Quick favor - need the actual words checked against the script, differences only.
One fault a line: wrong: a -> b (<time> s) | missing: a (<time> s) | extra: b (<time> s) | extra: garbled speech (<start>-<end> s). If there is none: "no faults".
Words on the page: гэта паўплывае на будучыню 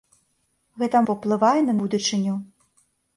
no faults